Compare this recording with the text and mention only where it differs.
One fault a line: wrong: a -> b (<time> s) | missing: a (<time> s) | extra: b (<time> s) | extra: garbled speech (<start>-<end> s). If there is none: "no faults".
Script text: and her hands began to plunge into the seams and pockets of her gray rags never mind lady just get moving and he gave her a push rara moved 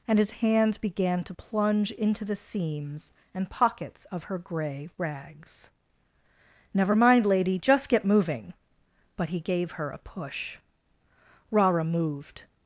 wrong: her -> his (0.2 s)
wrong: and -> but (9.2 s)